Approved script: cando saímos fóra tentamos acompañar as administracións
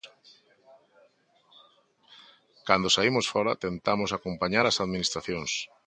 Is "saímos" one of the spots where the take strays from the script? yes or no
no